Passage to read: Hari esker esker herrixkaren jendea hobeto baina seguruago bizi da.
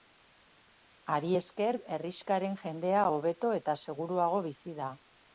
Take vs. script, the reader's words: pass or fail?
fail